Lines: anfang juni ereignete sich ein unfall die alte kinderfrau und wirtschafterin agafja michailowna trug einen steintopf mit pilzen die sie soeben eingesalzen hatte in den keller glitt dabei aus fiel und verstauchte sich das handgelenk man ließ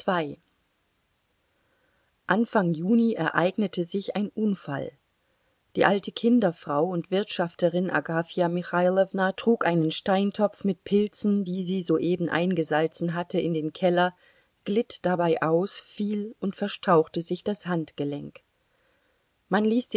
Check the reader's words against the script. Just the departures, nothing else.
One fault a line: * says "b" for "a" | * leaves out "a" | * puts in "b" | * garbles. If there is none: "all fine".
all fine